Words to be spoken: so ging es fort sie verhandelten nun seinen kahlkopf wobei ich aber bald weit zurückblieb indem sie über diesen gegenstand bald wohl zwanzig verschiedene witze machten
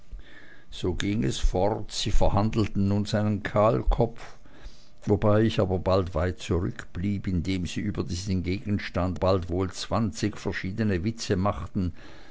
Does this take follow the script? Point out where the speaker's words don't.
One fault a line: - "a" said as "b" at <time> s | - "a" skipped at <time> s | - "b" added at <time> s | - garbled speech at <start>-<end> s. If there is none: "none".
none